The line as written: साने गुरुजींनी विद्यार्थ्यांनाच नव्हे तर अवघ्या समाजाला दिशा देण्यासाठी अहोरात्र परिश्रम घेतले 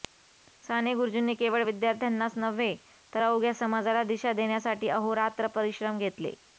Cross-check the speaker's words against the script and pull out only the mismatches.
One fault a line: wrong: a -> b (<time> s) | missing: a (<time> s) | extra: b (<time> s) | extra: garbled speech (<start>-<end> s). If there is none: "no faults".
extra: केवळ (1.4 s)